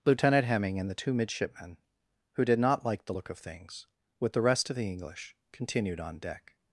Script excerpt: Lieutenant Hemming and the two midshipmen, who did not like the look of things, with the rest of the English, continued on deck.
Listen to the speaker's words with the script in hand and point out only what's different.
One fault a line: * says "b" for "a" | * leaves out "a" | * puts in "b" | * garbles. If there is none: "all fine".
all fine